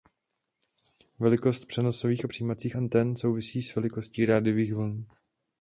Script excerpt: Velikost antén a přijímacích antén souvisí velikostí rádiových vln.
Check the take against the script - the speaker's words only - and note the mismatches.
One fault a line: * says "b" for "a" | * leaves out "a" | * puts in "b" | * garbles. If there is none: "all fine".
* says "přenosových" for "antén"
* puts in "s"